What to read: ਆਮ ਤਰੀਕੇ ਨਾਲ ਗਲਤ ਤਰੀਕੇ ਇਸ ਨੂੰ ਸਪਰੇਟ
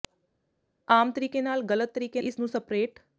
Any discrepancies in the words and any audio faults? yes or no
no